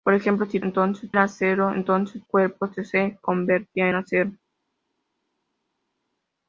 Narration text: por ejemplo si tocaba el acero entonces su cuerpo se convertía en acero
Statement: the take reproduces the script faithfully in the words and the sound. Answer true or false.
false